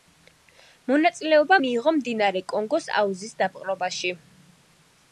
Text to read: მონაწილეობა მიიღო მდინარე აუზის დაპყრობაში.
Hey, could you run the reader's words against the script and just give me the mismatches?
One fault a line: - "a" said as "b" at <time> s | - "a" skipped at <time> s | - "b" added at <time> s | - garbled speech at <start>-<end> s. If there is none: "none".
- "კონგოს" added at 2.5 s